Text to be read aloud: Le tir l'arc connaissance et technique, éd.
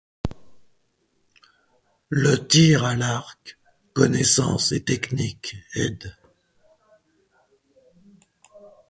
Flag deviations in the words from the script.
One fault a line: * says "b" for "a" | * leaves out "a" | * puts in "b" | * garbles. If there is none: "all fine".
* puts in "à"